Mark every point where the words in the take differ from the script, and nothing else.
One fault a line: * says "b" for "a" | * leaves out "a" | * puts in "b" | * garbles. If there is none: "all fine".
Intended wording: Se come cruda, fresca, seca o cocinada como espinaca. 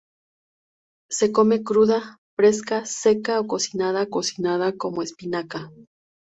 * puts in "cocinada"